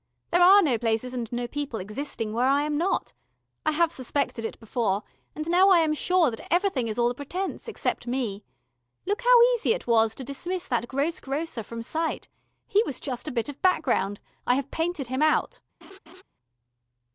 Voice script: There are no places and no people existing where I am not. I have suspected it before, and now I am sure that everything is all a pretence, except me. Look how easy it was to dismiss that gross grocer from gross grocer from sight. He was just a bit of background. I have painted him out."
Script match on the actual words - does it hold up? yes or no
no